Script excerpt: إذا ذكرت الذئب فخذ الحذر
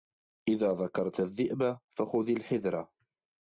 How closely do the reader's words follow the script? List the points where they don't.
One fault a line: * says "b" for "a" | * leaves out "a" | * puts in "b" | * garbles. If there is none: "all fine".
all fine